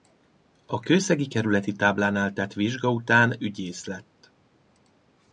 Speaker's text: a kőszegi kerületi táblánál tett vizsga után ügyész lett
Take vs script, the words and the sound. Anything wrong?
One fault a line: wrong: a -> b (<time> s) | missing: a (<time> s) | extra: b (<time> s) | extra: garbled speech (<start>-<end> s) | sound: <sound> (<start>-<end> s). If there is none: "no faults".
no faults